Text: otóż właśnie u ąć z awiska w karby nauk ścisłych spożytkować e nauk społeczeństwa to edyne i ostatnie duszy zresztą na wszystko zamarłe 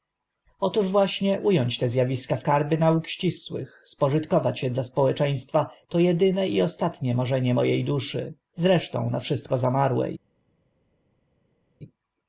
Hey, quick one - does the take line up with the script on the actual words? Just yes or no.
no